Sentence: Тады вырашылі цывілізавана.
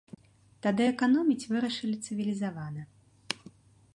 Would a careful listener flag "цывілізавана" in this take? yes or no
no